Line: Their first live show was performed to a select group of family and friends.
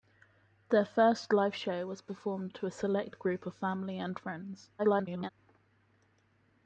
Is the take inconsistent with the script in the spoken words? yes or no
yes